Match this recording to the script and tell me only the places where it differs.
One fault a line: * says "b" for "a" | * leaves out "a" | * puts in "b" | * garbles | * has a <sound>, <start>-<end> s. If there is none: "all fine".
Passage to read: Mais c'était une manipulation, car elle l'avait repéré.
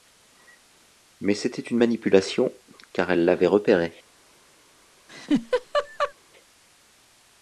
* has a laugh, 5.1-6.1 s